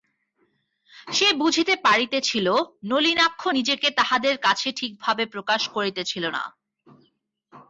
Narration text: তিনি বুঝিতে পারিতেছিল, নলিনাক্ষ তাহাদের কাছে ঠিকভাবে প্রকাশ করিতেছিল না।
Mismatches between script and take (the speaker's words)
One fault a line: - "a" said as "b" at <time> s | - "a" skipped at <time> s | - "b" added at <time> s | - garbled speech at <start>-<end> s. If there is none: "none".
- "তিনি" said as "সে" at 1.1 s
- "নিজেকে" added at 3.6 s